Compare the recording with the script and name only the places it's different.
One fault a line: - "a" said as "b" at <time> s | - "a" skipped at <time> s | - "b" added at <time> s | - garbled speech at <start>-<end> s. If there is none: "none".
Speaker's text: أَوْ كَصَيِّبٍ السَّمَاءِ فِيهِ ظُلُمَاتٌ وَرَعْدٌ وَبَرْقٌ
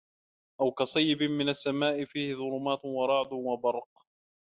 - "مِنَ" added at 1.2 s